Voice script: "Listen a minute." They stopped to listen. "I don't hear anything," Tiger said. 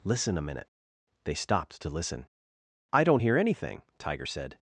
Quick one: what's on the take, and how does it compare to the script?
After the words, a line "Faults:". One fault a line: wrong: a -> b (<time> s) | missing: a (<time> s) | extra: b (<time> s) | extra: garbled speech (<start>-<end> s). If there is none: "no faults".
"Listen a minute." They stopped to listen. "I don't hear anything," Tiger said.
Faults:
no faults